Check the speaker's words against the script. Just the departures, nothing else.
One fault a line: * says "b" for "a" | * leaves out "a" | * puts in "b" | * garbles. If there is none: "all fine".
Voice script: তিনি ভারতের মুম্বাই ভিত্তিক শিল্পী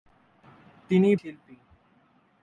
* leaves out "ভারতের মুম্বাই ভিত্তিক"